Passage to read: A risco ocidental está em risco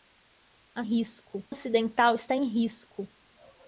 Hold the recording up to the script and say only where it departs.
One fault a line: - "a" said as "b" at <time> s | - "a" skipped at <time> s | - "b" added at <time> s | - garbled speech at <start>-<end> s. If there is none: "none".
none